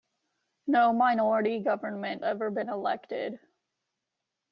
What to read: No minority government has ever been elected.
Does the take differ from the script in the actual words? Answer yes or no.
yes